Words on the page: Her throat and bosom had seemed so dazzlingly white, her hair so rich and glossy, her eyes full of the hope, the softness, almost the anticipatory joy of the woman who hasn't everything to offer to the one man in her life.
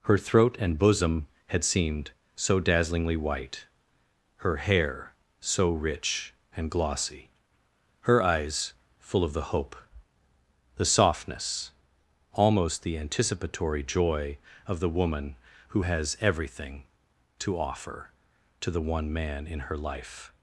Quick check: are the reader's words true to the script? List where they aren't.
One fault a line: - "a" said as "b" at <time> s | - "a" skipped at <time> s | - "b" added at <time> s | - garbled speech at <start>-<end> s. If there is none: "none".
- "hasn't" said as "has" at 15.8 s